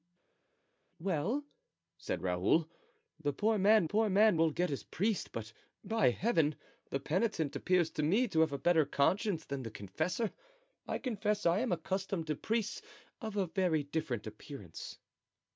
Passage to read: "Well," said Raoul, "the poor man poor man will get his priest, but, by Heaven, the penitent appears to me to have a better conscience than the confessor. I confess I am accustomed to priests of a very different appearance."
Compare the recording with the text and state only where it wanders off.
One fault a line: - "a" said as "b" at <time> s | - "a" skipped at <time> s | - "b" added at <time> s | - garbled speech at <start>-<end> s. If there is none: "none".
none